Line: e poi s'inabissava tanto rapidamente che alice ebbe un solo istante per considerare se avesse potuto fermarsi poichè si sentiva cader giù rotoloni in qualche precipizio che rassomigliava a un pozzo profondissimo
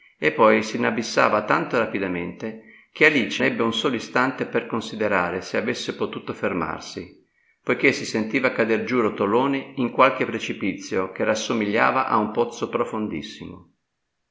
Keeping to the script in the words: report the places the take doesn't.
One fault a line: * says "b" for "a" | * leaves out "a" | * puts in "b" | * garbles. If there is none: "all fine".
all fine